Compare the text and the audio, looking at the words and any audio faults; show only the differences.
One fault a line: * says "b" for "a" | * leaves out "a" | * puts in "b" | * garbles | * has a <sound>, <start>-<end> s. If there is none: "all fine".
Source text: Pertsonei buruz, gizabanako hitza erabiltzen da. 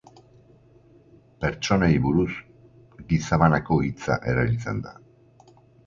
all fine